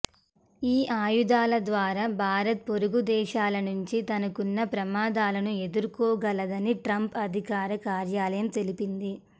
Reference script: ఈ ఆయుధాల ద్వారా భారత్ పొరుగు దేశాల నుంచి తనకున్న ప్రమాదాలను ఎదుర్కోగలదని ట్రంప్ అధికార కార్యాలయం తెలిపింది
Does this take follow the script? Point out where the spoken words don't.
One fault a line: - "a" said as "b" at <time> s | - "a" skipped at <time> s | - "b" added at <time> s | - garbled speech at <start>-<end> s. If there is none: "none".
none